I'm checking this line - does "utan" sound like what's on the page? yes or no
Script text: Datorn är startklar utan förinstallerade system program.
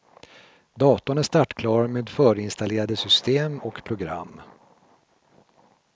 no